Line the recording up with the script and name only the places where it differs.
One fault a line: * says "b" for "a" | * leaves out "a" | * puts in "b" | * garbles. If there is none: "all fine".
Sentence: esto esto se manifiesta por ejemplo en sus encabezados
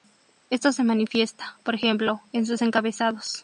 * leaves out "esto"